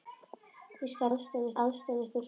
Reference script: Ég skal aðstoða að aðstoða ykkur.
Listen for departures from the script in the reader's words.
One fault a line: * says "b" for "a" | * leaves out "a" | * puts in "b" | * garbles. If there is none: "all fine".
all fine